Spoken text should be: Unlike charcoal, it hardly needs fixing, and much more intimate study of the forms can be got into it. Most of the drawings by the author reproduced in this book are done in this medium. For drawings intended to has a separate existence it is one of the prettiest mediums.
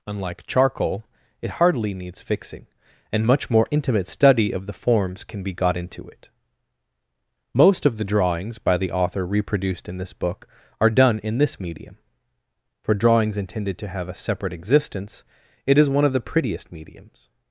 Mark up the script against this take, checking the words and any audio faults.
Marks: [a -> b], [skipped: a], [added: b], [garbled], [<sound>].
Unlike charcoal, it hardly needs fixing, and much more intimate study of the forms can be got into it. Most of the drawings by the author reproduced in this book are done in this medium. For drawings intended to [has -> have] a separate existence it is one of the prettiest mediums.